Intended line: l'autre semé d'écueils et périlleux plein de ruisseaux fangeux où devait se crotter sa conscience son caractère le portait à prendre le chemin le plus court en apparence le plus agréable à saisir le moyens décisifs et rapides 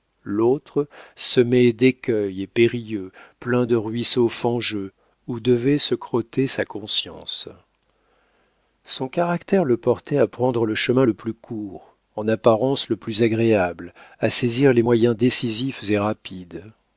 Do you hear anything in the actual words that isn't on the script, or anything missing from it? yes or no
yes